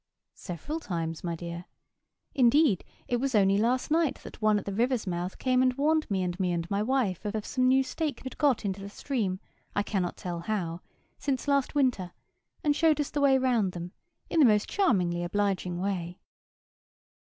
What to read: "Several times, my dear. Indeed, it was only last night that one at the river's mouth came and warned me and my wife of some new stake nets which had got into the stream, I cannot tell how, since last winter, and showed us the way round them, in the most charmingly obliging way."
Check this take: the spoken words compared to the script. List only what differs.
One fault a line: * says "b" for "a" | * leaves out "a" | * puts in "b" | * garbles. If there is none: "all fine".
* puts in "me and"
* puts in "of"
* leaves out "nets which"